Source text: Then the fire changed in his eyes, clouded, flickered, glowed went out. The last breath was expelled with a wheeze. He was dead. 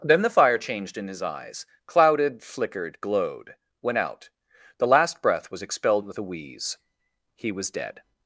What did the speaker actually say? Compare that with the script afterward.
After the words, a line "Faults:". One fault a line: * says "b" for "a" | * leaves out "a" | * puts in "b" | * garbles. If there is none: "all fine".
Then the fire changed in his eyes, clouded, flickered, glowed went out. The last breath was expelled with a wheeze. He was dead.
Faults:
all fine